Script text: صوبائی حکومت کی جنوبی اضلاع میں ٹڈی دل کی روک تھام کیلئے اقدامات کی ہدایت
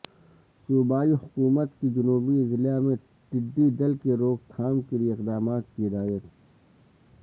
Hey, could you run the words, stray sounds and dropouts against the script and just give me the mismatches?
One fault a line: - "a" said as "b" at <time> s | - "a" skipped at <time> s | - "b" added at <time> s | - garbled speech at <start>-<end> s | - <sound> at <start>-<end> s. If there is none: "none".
none